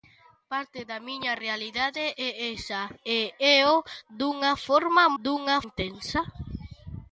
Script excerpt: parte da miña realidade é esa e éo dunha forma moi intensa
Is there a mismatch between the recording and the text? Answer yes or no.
yes